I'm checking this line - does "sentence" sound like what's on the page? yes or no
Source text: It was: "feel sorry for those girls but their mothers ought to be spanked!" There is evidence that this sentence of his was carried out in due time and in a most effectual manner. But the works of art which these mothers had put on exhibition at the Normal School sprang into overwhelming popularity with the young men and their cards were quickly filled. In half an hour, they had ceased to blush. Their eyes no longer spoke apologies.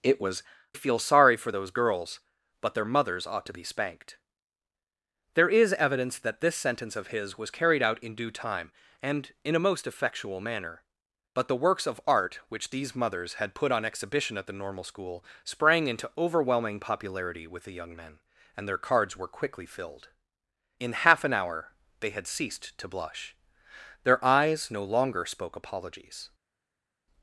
yes